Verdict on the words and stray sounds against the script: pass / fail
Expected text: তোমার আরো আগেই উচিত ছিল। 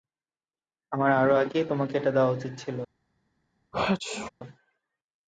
fail